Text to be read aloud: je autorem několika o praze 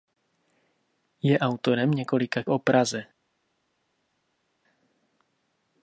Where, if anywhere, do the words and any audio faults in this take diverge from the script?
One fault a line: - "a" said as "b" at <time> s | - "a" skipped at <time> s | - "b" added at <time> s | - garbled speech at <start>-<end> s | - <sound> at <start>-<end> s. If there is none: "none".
none